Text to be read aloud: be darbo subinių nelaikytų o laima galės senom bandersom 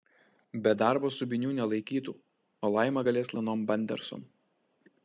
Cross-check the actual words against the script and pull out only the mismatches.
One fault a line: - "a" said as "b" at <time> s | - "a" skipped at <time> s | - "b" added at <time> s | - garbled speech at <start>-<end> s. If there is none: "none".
none